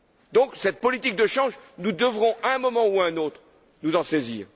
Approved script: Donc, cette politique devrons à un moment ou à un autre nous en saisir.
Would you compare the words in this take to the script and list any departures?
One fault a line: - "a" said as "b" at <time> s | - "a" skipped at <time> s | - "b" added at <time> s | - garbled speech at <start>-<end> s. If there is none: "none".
- "de change nous" added at 1.1 s